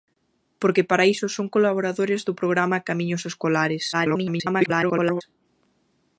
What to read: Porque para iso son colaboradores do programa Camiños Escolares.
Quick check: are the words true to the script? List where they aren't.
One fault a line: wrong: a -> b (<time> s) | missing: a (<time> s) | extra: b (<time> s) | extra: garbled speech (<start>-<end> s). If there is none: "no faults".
extra: garbled speech (3.9-5.2 s)